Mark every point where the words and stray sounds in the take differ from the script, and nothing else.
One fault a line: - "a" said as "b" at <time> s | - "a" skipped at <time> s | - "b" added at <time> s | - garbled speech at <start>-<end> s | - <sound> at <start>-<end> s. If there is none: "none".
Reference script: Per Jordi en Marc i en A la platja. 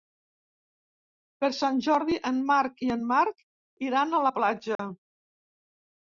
- "Sant" added at 1.6 s
- "Marc iran" added at 3.1 s
- dropout at 4.8-4.8 s